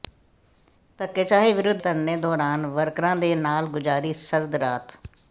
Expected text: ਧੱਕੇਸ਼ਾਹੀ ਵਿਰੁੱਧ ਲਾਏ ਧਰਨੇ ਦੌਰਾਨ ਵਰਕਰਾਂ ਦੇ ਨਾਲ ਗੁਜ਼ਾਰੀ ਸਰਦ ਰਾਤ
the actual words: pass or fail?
fail